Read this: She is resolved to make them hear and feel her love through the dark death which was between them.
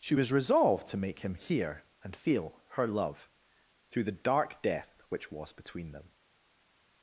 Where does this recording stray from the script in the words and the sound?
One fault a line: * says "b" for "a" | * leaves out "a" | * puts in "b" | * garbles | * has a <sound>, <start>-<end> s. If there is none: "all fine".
* says "was" for "is"
* says "him" for "them"